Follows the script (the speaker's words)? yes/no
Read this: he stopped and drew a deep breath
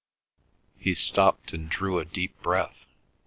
yes